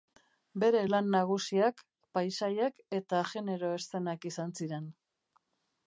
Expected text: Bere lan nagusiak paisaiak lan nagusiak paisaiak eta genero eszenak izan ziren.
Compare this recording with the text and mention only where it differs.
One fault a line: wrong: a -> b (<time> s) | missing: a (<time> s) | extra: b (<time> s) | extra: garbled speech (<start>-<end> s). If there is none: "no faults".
missing: lan nagusiak paisaiak (2.8 s)